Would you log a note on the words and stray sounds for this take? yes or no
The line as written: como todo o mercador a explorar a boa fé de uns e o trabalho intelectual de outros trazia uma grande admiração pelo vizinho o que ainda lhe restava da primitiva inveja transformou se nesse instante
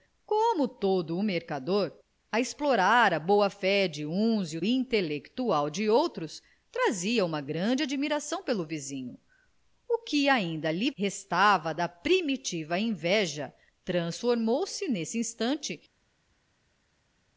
yes